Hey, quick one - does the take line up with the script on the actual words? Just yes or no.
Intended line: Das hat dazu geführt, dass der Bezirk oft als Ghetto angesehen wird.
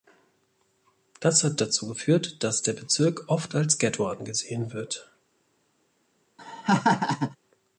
yes